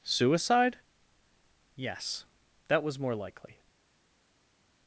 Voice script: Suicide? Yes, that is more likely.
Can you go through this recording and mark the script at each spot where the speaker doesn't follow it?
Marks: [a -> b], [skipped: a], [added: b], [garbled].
Suicide? Yes, that [is -> was] more likely.